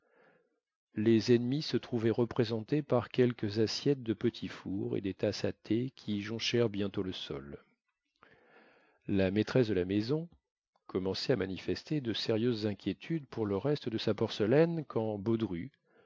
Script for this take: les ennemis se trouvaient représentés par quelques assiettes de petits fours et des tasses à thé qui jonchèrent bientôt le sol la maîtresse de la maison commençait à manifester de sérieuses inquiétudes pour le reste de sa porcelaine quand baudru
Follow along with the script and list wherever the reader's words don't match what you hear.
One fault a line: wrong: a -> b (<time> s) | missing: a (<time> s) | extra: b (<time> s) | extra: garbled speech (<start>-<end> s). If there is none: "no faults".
no faults